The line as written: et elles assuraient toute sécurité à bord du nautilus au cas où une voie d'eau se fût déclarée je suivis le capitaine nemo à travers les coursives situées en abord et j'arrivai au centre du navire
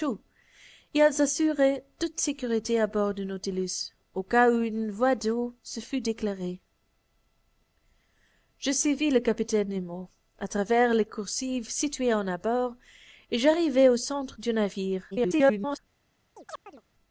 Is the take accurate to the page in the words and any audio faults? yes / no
no